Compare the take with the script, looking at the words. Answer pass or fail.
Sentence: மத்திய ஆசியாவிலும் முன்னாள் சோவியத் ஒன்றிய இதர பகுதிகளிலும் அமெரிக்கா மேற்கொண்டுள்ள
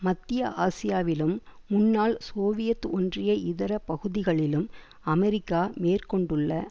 pass